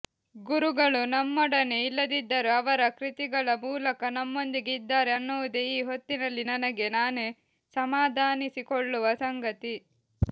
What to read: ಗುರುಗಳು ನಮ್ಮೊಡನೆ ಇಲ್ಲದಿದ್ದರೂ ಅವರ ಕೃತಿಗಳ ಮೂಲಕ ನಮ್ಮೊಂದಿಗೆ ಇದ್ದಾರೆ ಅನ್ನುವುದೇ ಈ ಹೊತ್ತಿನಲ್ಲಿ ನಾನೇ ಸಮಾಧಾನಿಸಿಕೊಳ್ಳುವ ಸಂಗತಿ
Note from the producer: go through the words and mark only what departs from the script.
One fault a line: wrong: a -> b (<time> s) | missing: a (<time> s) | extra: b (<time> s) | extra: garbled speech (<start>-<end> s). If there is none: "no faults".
extra: ನನಗೆ (6.5 s)